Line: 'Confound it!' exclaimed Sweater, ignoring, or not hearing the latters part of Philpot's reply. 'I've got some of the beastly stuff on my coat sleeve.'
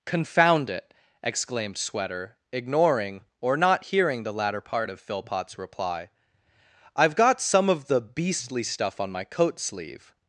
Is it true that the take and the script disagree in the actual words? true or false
true